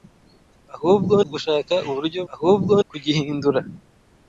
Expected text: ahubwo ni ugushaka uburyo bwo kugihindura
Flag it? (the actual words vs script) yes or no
yes